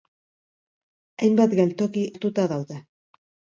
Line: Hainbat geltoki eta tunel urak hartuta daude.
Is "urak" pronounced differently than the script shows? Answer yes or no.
yes